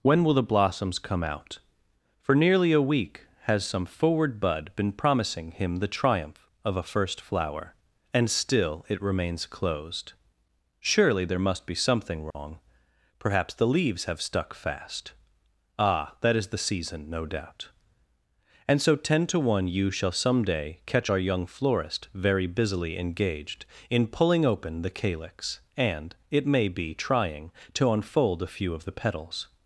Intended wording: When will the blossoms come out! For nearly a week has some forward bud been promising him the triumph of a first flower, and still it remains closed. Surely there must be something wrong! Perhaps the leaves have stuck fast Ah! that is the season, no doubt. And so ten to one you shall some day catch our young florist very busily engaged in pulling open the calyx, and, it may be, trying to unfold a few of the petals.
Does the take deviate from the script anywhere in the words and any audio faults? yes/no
yes